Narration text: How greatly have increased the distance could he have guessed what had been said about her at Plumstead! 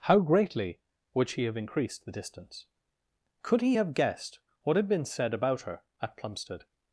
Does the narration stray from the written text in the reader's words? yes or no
yes